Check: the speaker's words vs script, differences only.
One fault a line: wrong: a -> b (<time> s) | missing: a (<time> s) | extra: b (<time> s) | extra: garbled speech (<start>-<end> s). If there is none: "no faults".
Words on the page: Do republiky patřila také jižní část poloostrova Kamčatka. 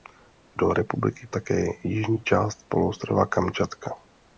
missing: patřila (1.3 s)